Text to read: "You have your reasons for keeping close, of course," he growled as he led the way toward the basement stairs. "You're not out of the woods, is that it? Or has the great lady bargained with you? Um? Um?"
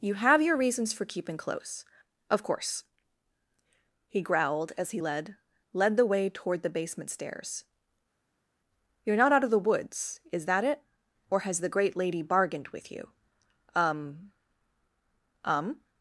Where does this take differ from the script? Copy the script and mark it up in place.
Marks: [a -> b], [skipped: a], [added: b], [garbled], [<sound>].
"You have your reasons for keeping close, of course," he growled as he led [added: led] the way toward the basement stairs. "You're not out of the woods, is that it? Or has the great lady bargained with you? Um? Um?"